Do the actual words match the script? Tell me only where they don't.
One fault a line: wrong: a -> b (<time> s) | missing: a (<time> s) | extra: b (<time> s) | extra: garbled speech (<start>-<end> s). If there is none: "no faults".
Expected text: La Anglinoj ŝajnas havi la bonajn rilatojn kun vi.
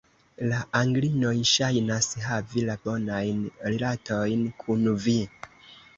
no faults